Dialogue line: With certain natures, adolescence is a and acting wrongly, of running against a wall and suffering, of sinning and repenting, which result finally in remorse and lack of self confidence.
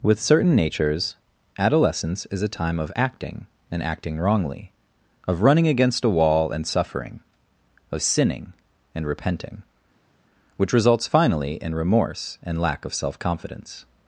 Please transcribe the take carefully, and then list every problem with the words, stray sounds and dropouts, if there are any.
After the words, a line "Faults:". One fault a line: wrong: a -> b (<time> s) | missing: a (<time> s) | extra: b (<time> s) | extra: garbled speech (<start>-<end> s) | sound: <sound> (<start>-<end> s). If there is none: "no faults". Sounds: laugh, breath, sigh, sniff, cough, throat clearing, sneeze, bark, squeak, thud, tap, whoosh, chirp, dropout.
With certain natures, adolescence is a time of acting and acting wrongly, of running against a wall and suffering, of sinning and repenting, which results finally in remorse and lack of self confidence.
Faults:
extra: time of acting (2.5 s)
wrong: result -> results (10.7 s)